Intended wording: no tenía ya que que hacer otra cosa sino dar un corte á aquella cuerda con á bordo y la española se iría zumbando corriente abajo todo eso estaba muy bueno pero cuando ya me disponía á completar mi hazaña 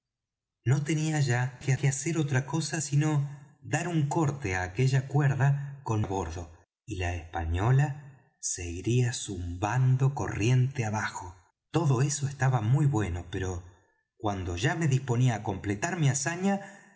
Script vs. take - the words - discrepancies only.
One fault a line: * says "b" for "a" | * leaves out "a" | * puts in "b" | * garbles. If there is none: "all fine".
all fine